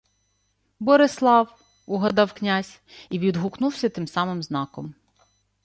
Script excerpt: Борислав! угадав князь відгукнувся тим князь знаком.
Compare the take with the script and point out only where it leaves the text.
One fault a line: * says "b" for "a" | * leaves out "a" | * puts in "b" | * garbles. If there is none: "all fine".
* puts in "і"
* says "самим" for "князь"